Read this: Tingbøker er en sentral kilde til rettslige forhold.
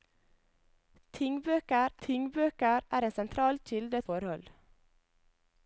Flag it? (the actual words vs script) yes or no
yes